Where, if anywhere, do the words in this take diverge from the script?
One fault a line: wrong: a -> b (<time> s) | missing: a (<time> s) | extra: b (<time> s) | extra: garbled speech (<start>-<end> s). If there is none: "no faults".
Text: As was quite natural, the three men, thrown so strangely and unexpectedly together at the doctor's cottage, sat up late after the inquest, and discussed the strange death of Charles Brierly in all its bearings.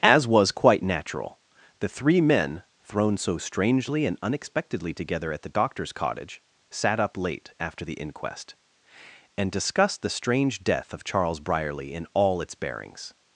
no faults